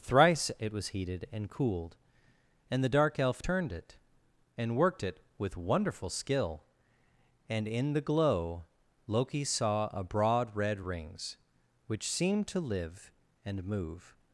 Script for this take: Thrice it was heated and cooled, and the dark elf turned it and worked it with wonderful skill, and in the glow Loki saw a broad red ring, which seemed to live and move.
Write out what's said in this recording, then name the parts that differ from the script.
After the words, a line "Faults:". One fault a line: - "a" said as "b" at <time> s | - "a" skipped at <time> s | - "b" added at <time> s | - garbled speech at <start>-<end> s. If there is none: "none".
Thrice it was heated and cooled, and the dark elf turned it and worked it with wonderful skill, and in the glow Loki saw a broad red rings, which seemed to live and move.
Faults:
- "ring" said as "rings" at 10.8 s